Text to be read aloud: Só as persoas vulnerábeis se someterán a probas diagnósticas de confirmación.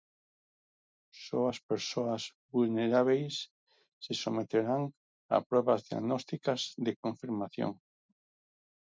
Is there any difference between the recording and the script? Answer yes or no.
no